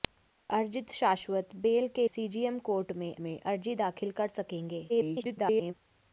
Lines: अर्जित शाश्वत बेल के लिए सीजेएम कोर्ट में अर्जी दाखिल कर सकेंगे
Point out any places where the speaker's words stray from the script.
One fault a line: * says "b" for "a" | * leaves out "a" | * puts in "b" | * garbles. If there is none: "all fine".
* leaves out "लिए"
* puts in "में"
* garbles